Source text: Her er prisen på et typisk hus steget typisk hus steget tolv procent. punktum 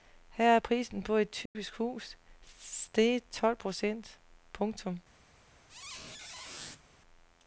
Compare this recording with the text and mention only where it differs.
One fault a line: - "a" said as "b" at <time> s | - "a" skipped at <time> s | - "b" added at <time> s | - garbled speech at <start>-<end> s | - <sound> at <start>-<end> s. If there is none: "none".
- dropout at 1.5-1.6 s
- "typisk hus steget" skipped at 3.2 s
- squeak at 5.7-6.8 s